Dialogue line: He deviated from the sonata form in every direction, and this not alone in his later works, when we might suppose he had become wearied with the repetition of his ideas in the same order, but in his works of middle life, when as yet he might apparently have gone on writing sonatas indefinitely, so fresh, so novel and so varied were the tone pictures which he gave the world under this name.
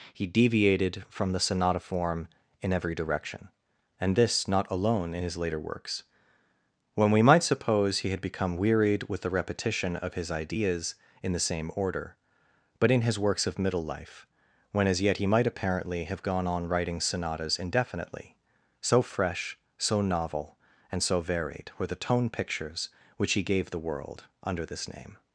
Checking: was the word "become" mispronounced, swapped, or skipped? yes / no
no